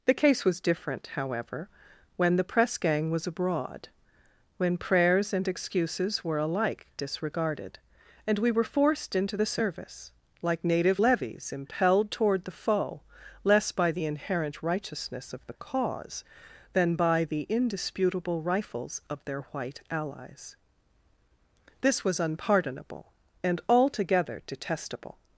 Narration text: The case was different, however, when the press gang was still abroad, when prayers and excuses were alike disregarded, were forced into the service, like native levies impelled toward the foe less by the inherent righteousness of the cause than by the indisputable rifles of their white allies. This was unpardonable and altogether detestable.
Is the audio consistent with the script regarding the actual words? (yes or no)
no